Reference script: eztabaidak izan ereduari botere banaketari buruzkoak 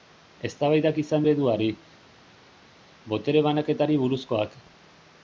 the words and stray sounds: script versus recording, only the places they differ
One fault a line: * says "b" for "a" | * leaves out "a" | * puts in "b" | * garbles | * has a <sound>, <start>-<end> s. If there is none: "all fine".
all fine